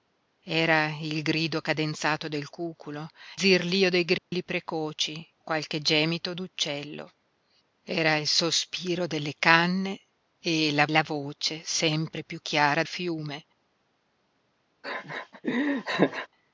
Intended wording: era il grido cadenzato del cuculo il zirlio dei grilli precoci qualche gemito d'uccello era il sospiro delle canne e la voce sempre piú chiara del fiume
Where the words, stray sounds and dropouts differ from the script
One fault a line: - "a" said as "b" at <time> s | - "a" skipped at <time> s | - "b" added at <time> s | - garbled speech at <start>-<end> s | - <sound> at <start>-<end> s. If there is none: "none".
- "il" skipped at 3.1 s
- dropout at 4.2-4.3 s
- "la" added at 10.9 s
- "del" skipped at 12.8 s
- laugh at 14.8-16.3 s